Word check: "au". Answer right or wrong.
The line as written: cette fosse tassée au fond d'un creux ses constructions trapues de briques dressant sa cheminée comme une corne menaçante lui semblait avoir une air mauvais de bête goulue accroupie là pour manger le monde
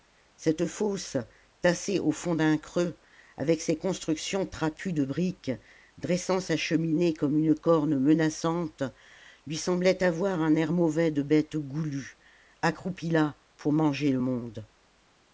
right